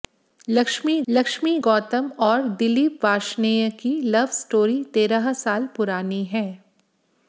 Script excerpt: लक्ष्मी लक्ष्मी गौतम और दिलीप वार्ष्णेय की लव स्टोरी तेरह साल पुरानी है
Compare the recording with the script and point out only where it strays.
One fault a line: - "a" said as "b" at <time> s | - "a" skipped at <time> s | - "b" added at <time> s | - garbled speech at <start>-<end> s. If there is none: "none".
none